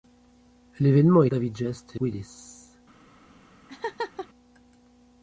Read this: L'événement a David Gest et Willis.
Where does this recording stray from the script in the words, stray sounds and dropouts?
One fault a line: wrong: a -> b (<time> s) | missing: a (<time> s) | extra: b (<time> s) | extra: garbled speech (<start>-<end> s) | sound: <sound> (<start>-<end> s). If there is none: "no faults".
sound: laugh (3.7-4.3 s)